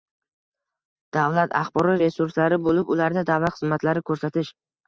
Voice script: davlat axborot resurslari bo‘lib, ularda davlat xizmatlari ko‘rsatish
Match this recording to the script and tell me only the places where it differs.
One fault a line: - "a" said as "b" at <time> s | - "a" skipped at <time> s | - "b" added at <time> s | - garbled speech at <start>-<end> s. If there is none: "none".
none